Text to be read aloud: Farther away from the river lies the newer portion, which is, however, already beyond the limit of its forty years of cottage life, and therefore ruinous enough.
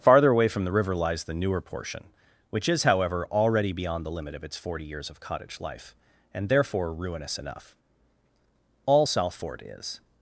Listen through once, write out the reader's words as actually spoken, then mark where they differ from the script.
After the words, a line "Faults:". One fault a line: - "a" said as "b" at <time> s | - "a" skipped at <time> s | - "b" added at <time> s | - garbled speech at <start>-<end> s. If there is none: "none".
Farther away from the river lies the newer portion, which is, however, already beyond the limit of its forty years of cottage life, and therefore ruinous enough. All Salford is
Faults:
- "All Salford is" added at 8.9 s